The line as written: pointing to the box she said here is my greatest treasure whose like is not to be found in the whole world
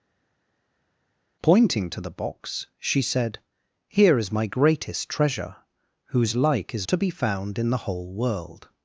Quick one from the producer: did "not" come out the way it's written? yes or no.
no